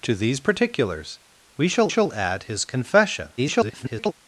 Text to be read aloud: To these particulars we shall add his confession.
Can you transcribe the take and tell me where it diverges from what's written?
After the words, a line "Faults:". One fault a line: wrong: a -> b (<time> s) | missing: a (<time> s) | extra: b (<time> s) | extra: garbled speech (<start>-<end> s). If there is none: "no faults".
To these particulars we shall shall add his confession. [garbled]
Faults:
extra: shall (1.9 s)
extra: garbled speech (3.4-4.1 s)